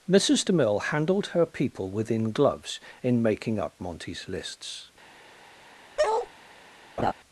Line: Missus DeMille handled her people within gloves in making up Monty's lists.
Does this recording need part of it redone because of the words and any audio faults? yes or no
yes